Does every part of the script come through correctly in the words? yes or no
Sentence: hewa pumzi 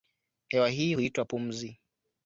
no